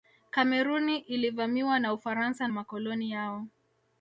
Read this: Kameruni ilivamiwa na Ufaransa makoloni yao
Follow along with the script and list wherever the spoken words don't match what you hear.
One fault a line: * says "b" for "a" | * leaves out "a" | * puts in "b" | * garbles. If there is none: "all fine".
all fine